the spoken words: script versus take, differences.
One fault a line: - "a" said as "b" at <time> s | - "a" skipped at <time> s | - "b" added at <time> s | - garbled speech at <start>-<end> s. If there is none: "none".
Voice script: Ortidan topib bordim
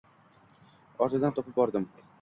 none